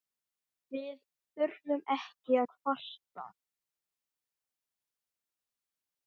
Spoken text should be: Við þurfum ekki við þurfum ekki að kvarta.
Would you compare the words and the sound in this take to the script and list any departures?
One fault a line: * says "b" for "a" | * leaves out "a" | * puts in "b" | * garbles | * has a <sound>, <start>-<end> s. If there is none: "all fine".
* leaves out "við þurfum ekki"